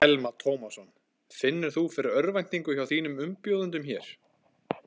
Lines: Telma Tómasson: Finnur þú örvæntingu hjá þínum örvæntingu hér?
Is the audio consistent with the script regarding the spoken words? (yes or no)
no